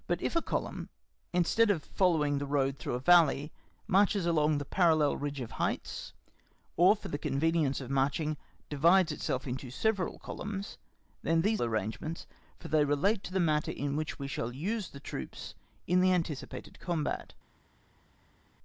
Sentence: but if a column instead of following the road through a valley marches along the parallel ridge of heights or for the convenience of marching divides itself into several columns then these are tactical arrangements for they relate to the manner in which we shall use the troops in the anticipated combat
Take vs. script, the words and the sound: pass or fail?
fail